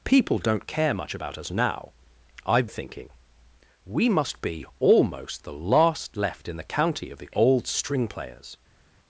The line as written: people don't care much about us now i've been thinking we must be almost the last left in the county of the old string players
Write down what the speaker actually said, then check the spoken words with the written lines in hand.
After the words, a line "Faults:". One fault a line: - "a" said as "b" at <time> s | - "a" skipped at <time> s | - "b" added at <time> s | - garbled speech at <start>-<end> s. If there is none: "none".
people don't care much about us now i've thinking we must be almost the last left in the county of the old string players
Faults:
- "been" skipped at 2.7 s